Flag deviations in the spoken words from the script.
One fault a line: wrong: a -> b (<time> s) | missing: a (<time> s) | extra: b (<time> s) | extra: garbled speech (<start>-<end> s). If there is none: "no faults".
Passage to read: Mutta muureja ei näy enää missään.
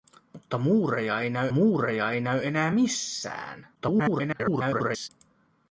extra: muureja ei näy (1.5 s)
extra: garbled speech (3.8-5.1 s)